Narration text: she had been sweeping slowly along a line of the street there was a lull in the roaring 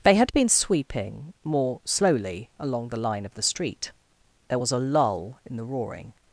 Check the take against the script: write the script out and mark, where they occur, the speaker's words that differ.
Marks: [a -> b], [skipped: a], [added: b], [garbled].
[she -> they] had been sweeping [added: more] slowly along [a -> the] line of the street there was a lull in the roaring